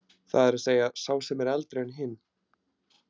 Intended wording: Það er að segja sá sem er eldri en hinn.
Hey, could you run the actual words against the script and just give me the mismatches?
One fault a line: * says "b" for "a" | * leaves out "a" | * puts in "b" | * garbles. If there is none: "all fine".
all fine